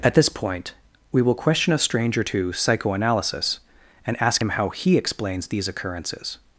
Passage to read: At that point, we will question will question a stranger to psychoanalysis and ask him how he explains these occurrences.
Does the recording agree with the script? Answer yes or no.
no